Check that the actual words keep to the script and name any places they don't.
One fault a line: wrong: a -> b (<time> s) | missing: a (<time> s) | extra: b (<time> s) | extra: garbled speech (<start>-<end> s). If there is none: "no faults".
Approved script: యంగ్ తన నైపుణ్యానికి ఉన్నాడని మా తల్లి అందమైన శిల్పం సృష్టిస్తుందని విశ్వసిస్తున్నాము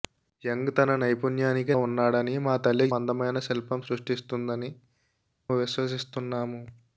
no faults